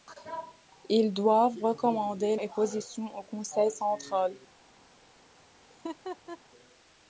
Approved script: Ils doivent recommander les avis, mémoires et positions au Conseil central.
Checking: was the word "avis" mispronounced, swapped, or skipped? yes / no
yes